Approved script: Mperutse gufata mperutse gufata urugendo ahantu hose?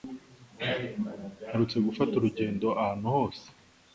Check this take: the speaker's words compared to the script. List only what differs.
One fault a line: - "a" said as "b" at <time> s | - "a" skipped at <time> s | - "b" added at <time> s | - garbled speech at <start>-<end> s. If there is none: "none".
- "mperutse gufata" skipped at 2.1 s